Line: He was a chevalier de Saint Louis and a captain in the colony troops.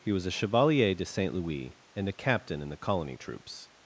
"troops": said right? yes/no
yes